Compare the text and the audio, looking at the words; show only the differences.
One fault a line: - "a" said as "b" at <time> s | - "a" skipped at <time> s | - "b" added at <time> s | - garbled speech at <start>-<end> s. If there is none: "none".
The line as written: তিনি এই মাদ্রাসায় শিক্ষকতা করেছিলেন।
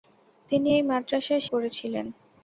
- "শিক্ষকতা" skipped at 1.5 s